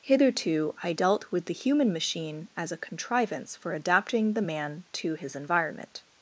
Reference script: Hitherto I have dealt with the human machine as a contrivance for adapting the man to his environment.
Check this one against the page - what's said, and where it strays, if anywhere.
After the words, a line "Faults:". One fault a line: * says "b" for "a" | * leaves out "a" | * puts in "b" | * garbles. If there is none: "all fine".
Hitherto I dealt with the human machine as a contrivance for adapting the man to his environment.
Faults:
* leaves out "have"